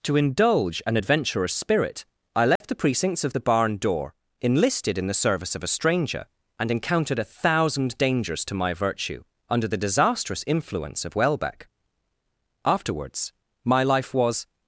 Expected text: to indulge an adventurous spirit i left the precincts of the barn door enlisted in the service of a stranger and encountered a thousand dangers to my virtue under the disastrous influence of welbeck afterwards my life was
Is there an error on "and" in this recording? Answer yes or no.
no